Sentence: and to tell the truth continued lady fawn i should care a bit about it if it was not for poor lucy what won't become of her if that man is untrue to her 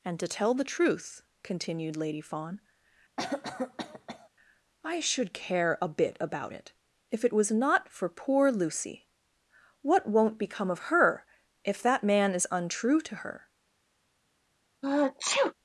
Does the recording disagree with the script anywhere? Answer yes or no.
no